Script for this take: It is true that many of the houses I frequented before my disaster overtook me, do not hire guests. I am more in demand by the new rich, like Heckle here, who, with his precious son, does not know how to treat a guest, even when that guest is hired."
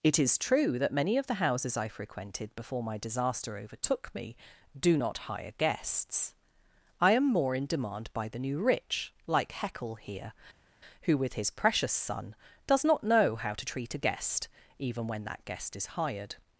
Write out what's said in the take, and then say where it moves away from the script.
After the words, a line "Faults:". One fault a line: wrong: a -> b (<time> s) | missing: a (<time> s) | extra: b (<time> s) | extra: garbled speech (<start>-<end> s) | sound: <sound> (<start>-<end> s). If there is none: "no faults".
It is true that many of the houses I frequented before my disaster overtook me, do not hire guests. I am more in demand by the new rich, like Heckle here, who, with his precious son, does not know how to treat a guest, even when that guest is hired."
Faults:
no faults